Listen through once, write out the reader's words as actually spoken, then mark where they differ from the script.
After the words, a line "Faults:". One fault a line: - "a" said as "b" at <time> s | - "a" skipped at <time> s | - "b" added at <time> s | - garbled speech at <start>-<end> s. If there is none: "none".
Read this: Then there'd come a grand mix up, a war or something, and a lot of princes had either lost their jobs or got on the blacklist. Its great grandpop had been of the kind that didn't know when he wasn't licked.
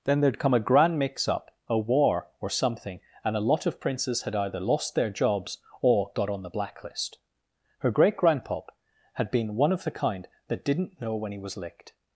Then there'd come a grand mix up, a war or something, and a lot of princes had either lost their jobs or got on the blacklist. Her great grandpop had been one of the kind that didn't know when he was licked.
Faults:
- "Its" said as "Her" at 7.8 s
- "one" added at 9.6 s
- "wasn't" said as "was" at 11.4 s